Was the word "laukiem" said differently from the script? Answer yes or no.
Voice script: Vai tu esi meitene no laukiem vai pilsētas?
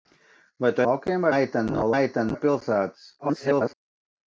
yes